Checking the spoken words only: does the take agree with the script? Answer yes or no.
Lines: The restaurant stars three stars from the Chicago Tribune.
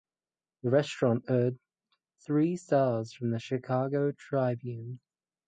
no